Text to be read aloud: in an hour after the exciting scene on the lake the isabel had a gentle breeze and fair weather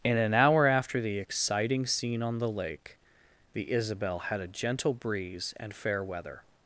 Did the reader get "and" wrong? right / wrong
right